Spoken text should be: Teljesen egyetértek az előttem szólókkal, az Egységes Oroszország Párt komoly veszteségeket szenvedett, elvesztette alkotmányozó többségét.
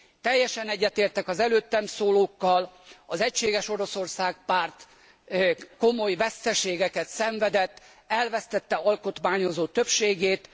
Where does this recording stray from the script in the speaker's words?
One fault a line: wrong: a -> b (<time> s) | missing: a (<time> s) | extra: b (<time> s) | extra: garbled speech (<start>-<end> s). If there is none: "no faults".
no faults